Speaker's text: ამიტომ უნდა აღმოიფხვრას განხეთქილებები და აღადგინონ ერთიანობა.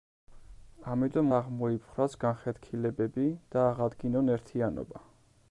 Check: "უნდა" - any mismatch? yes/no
yes